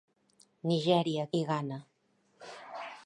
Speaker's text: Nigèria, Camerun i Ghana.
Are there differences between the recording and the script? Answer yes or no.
yes